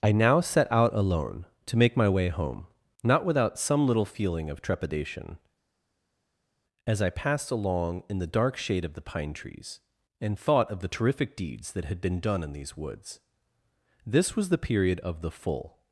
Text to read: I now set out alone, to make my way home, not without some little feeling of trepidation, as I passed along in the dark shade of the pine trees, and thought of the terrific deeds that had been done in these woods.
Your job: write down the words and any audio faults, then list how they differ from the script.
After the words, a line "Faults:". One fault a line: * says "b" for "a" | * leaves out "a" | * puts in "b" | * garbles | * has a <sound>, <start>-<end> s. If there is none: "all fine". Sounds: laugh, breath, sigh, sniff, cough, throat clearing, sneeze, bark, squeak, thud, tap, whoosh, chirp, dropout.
I now set out alone, to make my way home, not without some little feeling of trepidation, as I passed along in the dark shade of the pine trees, and thought of the terrific deeds that had been done in these woods. This was the period of the full
Faults:
* puts in "This was the period of the full"